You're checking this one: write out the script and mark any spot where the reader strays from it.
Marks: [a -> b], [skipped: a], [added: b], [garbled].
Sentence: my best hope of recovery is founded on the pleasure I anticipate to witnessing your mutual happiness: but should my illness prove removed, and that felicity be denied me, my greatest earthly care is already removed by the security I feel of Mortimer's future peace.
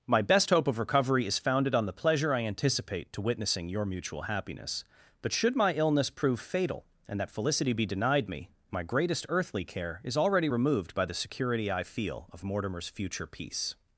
my best hope of recovery is founded on the pleasure I anticipate to witnessing your mutual happiness: but should my illness prove [removed, -> fatal] and that felicity be denied me, my greatest earthly care is already removed by the security I feel of Mortimer's future peace.